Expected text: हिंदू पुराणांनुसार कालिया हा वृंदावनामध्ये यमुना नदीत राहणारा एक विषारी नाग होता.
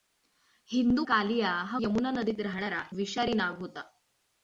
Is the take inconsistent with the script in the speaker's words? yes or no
yes